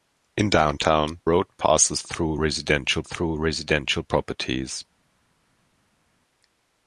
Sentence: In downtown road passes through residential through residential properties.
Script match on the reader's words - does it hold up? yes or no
yes